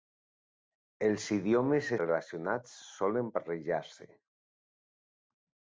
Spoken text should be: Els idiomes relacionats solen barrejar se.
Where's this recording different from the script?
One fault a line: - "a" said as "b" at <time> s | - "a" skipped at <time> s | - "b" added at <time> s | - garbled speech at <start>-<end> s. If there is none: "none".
none